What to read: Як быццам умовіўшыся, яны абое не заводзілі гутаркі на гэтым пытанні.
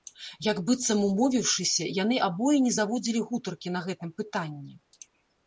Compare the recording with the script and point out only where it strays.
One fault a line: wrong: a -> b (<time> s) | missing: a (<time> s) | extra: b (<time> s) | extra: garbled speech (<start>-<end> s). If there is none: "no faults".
no faults